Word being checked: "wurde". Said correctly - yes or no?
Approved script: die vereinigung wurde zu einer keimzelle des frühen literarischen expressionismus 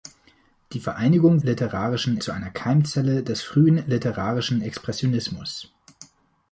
no